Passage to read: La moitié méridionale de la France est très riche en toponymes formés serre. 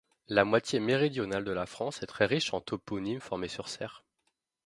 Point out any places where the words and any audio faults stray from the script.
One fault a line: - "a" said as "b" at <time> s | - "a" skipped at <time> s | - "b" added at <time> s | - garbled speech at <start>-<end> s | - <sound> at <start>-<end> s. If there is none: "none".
- "sur" added at 3.5 s